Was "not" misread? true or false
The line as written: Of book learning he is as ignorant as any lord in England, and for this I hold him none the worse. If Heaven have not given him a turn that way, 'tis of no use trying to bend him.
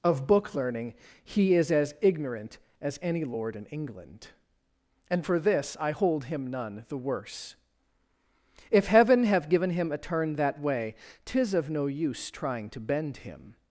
true